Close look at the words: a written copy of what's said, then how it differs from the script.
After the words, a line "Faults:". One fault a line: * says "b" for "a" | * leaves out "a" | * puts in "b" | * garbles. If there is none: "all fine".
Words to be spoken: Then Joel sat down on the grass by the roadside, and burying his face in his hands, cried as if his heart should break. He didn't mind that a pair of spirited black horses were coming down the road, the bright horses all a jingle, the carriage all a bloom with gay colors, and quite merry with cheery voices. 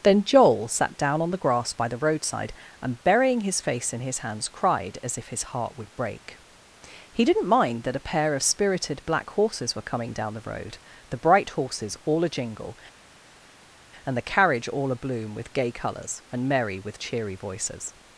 Then Joel sat down on the grass by the roadside, and burying his face in his hands, cried as if his heart would break. He didn't mind that a pair of spirited black horses were coming down the road, the bright horses all a jingle, and the carriage all a bloom with gay colors, and merry with cheery voices.
Faults:
* says "would" for "should"
* puts in "and"
* leaves out "quite"